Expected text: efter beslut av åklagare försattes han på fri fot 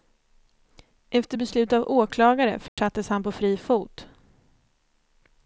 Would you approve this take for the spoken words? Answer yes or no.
yes